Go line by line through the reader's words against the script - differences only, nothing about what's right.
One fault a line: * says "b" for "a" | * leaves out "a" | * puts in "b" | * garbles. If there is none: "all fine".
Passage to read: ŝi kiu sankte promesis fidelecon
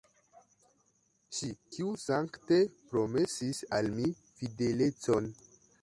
* puts in "al mi"